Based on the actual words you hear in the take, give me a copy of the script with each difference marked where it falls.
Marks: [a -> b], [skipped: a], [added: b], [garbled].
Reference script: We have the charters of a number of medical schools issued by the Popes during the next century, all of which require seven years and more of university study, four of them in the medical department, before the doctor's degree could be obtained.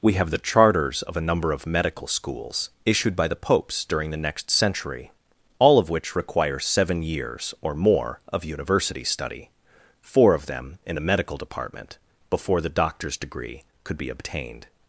We have the charters of a number of medical schools issued by the Popes during the next century, all of which require seven years [and -> or] more of university study, four of them in the medical department, before the doctor's degree could be obtained.